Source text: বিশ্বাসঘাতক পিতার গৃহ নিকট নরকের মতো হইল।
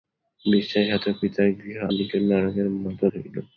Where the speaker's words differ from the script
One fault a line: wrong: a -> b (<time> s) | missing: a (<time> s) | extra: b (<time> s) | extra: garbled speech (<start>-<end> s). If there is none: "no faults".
no faults